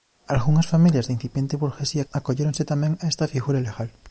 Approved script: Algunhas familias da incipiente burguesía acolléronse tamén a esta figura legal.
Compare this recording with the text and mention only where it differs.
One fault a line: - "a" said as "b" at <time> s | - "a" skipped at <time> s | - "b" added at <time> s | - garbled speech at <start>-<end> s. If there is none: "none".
none